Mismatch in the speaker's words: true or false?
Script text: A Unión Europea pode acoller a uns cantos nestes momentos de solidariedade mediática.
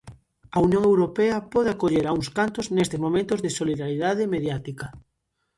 false